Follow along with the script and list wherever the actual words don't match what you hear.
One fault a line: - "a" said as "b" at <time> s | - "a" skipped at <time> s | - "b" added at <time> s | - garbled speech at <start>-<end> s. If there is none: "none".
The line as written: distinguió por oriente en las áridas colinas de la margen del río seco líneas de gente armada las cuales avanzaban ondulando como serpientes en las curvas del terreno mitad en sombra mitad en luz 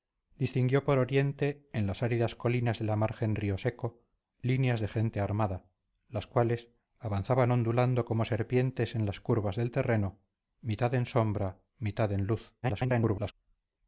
- "del" skipped at 3.4 s
- garbled speech at 12.6-13.3 s